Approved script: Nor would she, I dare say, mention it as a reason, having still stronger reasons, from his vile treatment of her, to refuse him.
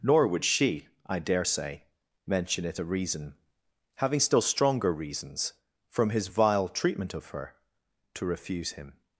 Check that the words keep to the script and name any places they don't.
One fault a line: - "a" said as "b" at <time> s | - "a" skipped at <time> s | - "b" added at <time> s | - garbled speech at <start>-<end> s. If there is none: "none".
- "as" skipped at 2.8 s